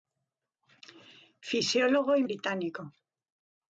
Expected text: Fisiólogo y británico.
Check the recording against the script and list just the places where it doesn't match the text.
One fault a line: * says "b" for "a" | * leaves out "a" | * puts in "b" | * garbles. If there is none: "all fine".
all fine